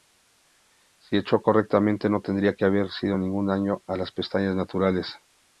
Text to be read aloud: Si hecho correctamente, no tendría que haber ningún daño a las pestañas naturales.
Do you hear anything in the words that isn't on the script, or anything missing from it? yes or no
no